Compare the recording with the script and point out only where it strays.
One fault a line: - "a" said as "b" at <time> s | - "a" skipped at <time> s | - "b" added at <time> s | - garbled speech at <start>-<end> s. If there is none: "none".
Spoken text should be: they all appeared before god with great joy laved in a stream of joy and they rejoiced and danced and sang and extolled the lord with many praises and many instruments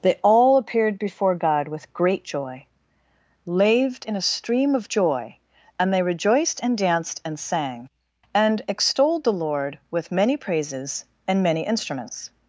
none